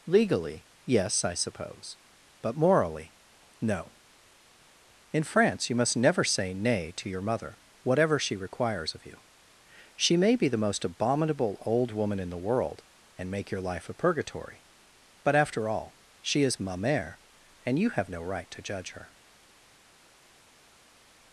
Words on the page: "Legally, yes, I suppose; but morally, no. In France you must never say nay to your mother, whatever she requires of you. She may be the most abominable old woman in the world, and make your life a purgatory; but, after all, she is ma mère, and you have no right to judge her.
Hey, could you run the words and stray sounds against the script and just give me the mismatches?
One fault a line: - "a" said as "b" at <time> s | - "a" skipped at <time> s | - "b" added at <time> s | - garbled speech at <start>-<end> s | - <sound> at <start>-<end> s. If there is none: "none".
none